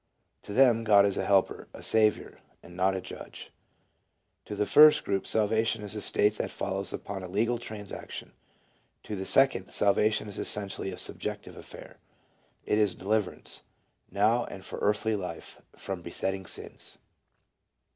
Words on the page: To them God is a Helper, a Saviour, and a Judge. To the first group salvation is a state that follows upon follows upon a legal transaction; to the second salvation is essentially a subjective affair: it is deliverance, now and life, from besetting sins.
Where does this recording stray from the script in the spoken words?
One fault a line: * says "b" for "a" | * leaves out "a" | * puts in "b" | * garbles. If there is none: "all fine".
* puts in "not"
* leaves out "follows upon"
* puts in "for earthly"